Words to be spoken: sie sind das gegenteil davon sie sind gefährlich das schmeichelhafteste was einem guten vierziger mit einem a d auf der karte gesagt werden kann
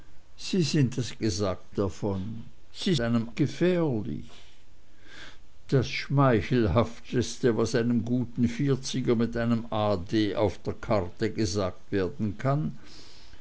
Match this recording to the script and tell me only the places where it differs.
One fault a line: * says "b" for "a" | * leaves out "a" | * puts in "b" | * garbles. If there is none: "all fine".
* says "gesagt" for "gegenteil"
* says "einem" for "sind"